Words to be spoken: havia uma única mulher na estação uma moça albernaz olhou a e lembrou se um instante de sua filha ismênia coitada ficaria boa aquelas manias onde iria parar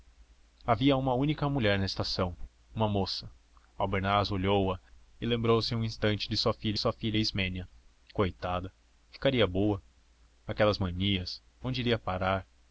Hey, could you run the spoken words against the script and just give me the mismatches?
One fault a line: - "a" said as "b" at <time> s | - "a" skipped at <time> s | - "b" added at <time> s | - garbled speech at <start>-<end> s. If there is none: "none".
- "sua filha" added at 6.7 s